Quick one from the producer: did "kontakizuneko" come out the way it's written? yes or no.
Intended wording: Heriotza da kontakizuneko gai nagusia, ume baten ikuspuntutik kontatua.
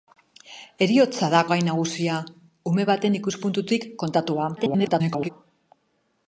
no